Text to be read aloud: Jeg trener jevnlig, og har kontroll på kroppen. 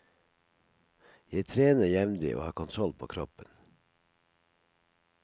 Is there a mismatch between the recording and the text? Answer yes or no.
no